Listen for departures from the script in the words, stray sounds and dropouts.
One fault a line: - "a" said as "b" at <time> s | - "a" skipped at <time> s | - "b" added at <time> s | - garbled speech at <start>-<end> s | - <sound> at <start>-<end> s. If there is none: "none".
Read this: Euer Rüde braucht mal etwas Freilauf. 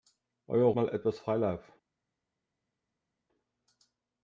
- "Rüde braucht" skipped at 0.8 s